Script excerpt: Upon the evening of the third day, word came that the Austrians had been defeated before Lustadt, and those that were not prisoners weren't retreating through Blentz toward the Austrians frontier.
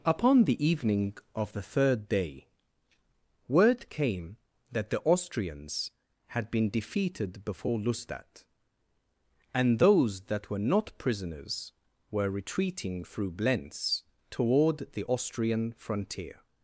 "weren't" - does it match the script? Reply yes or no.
no